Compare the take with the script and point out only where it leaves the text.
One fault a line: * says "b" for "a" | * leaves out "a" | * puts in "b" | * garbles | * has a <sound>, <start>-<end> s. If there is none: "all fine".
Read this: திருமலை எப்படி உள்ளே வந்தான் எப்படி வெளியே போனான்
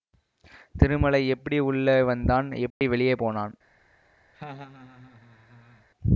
* has a dropout, 2.7-2.8 s
* has a laugh, 4.3-5.9 s